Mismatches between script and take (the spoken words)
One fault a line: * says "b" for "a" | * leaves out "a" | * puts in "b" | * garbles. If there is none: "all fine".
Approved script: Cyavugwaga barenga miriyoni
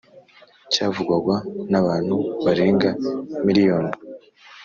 * puts in "n'abantu"